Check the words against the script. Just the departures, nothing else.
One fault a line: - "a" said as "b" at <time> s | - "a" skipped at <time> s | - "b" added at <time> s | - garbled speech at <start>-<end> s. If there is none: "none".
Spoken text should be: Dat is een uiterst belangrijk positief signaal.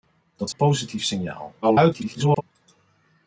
- "een uiterst belangrijk" skipped at 0.5 s
- garbled speech at 1.6-2.4 s